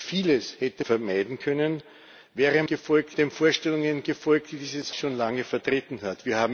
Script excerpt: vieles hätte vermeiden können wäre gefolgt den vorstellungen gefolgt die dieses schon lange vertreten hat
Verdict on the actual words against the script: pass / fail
pass